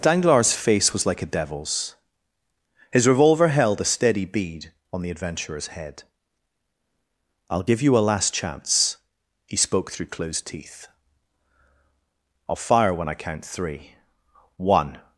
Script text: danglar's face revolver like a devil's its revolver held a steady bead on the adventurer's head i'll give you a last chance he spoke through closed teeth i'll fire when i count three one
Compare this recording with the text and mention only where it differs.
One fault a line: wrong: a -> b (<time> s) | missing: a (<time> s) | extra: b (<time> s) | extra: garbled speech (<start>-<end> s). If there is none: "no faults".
wrong: revolver -> was (0.9 s)
wrong: its -> his (2.9 s)